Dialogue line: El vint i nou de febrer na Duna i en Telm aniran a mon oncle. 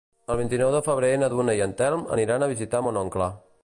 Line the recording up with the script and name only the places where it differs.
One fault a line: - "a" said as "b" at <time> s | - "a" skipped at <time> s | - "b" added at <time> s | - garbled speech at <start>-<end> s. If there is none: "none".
- "visitar" added at 2.6 s